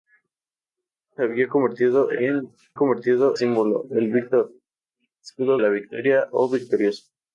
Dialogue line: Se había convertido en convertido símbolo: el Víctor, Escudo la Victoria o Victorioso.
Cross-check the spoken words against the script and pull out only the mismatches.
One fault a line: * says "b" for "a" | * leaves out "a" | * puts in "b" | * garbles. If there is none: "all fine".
all fine